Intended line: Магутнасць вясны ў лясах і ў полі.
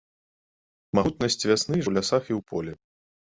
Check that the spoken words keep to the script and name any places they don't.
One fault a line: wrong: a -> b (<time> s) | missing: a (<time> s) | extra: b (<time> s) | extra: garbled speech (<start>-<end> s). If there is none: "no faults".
no faults